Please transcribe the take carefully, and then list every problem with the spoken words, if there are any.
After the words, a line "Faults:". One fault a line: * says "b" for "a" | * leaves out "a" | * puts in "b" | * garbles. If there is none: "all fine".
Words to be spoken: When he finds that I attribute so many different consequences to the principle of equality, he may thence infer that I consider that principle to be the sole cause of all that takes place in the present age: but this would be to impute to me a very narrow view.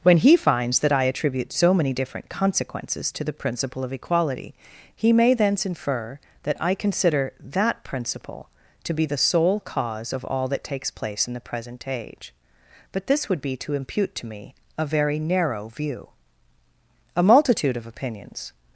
When he finds that I attribute so many different consequences to the principle of equality, he may thence infer that I consider that principle to be the sole cause of all that takes place in the present age: but this would be to impute to me a very narrow view. A multitude of opinions
Faults:
* puts in "A multitude of opinions"